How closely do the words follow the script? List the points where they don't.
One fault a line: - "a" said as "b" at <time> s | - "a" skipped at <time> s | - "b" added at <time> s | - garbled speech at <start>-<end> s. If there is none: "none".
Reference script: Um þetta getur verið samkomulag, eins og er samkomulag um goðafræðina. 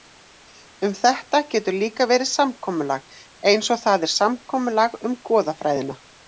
- "líka" added at 1.8 s
- "það" added at 3.9 s